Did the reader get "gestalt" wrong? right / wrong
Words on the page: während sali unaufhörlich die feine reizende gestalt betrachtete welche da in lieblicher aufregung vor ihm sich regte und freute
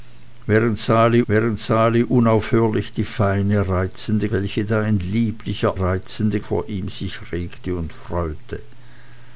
wrong